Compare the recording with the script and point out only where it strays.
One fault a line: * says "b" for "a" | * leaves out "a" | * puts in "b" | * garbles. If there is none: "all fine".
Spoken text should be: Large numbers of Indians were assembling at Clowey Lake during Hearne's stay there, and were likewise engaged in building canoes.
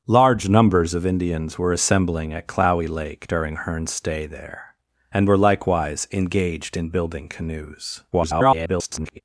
* garbles